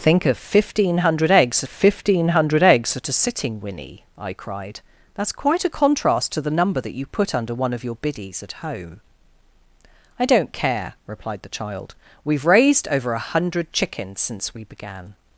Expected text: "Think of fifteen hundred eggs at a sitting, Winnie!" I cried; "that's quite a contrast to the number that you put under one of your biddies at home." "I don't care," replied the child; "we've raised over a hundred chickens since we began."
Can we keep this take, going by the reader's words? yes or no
no